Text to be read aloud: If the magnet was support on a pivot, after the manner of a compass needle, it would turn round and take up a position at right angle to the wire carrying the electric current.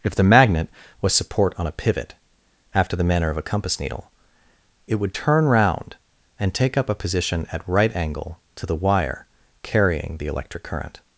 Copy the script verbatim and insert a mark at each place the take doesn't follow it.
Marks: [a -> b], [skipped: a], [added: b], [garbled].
If the magnet was support on a pivot, after the manner of a compass needle, it would turn round and take up a position at right angle to the wire carrying the electric current.